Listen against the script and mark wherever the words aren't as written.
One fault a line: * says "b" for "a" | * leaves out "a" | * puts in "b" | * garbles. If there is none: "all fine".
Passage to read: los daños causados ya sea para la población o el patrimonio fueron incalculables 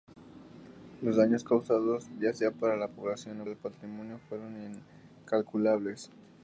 all fine